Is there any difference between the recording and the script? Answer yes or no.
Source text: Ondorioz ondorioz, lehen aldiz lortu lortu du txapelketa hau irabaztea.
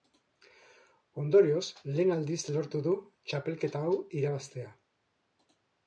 yes